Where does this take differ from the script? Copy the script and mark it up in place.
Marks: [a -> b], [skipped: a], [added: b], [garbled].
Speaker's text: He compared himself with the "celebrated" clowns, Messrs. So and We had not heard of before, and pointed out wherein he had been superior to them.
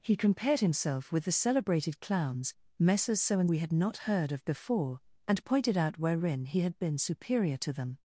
He compared himself with the "celebrated" clowns, Messrs. So and We had not heard of before, and pointed out wherein he had been superior to them.